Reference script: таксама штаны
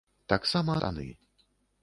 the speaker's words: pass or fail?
pass